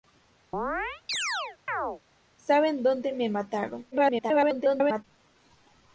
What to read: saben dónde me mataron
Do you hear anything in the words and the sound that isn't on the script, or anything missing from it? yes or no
yes